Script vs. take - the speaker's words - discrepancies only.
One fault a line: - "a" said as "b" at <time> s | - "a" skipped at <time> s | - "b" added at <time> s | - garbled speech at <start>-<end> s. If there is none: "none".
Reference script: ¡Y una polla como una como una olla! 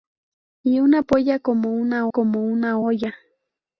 none